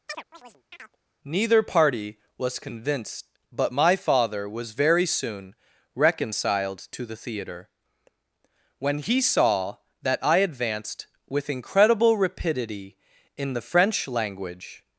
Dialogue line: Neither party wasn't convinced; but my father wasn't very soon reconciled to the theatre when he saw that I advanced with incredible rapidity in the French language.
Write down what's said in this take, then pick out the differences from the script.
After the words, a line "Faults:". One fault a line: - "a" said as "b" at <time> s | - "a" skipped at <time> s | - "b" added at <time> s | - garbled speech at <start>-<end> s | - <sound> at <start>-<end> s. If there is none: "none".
Neither party was convinced; but my father was very soon reconciled to the theatre when he saw that I advanced with incredible rapidity in the French language.
Faults:
- chirp at 0.1-1.0 s
- "wasn't" said as "was" at 2.4 s
- "wasn't" said as "was" at 4.5 s